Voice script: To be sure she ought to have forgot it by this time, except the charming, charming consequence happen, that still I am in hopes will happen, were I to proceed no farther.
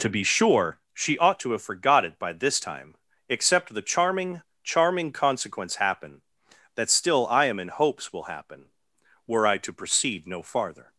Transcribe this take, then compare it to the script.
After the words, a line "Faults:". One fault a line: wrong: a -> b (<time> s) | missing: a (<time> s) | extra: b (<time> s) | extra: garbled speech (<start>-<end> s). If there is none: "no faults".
To be sure she ought to have forgot it by this time, except the charming, charming consequence happen, that still I am in hopes will happen, were I to proceed no farther.
Faults:
no faults